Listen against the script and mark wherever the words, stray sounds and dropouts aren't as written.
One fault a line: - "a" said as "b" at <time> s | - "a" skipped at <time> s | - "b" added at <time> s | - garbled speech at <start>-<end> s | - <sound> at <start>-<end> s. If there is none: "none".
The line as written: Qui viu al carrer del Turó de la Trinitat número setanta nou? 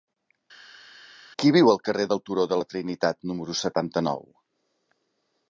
none